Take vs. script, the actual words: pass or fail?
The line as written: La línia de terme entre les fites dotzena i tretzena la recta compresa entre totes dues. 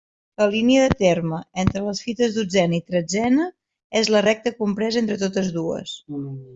fail